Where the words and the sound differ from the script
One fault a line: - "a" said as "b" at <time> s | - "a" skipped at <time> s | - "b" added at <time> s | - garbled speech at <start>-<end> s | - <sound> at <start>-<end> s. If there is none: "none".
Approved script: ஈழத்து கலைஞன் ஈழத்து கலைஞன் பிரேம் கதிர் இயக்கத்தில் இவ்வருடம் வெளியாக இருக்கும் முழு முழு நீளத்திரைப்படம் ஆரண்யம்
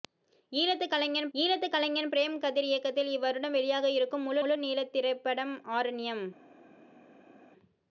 none